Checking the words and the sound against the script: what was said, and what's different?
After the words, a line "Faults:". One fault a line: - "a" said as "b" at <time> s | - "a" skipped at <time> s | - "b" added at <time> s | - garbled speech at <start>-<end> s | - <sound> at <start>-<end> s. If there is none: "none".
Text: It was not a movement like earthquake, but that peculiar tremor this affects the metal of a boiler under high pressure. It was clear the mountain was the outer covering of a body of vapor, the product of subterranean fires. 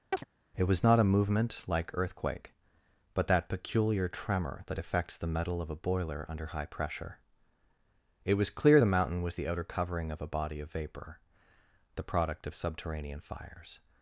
It was not a movement like earthquake, but that peculiar tremor that affects the metal of a boiler under high pressure. It was clear the mountain was the outer covering of a body of vapor, the product of subterranean fires.
Faults:
- chirp at 0.1-0.2 s
- "this" said as "that" at 4.7 s